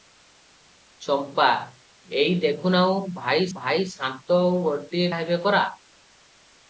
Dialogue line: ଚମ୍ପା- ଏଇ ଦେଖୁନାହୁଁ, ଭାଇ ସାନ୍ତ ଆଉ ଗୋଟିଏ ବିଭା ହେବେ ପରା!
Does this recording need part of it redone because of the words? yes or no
yes